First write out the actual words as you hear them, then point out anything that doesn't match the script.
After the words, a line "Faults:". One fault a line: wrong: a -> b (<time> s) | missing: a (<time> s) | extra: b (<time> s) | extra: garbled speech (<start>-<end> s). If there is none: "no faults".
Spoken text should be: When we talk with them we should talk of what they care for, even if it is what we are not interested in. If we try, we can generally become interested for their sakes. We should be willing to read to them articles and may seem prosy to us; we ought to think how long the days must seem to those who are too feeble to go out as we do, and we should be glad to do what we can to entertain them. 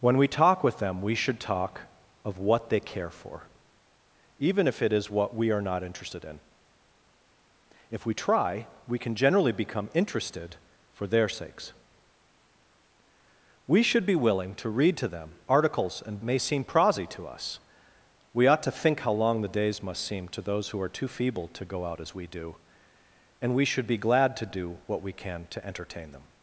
When we talk with them we should talk of what they care for, even if it is what we are not interested in. If we try, we can generally become interested for their sakes. We should be willing to read to them articles and may seem prosy to us; we ought to think how long the days must seem to those who are too feeble to go out as we do, and we should be glad to do what we can to entertain them.
Faults:
no faults